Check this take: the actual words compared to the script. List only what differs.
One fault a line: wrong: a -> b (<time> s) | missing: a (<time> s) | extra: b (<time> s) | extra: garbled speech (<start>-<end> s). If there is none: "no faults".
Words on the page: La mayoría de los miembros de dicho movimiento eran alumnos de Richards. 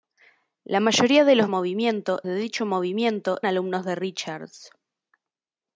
wrong: miembros -> movimiento (1.5 s)
missing: eran (3.4 s)